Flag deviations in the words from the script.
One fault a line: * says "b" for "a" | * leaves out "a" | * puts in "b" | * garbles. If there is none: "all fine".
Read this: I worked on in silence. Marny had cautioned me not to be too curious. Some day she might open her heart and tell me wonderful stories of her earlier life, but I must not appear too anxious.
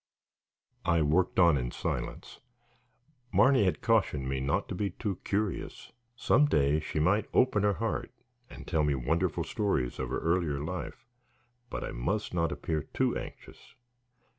all fine